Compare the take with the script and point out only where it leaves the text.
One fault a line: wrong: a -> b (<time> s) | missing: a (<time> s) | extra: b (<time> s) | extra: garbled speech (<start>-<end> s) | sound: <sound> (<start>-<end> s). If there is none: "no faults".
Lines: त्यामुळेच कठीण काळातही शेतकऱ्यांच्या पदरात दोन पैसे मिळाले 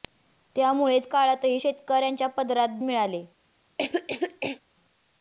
missing: कठीण (1.1 s)
missing: दोन पैसे (2.8 s)
sound: cough (3.8-4.6 s)